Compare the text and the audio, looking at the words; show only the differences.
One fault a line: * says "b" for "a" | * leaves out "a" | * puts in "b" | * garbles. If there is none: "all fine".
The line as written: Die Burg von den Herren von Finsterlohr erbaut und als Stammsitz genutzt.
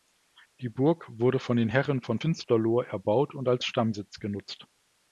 * puts in "wurde"